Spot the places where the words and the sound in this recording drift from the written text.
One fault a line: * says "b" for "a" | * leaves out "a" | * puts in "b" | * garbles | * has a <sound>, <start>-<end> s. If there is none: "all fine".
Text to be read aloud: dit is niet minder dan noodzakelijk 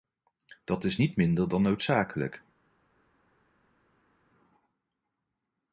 * says "dat" for "dit"